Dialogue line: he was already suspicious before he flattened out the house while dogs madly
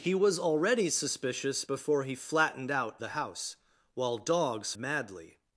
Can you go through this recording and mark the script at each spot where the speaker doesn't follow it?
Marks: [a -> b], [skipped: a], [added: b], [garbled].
he was already suspicious before he flattened out the house while dogs madly